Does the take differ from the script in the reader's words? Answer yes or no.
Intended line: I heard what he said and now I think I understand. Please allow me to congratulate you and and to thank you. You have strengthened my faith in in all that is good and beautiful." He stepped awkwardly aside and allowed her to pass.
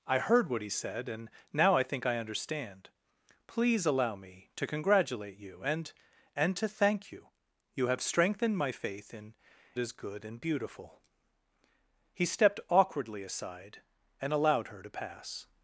yes